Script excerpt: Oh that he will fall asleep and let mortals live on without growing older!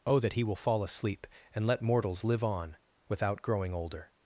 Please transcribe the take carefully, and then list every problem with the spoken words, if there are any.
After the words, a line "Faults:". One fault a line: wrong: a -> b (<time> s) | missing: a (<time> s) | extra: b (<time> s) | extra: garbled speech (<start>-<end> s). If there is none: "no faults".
Oh that he will fall asleep and let mortals live on without growing older!
Faults:
no faults